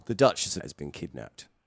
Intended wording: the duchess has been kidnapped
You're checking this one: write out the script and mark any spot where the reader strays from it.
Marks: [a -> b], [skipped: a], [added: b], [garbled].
the duchess has been kidnapped